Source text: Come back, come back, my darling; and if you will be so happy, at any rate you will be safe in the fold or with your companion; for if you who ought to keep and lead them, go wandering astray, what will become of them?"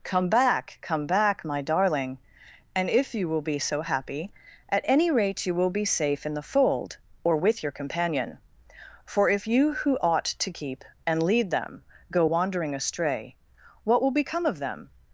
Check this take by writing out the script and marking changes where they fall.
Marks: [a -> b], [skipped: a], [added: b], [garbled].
Come back, come back, my darling; and if you will be so happy, at any rate you will be safe in the fold or with your companion; for if you who ought to keep and lead them, go wandering astray, what will become of them?"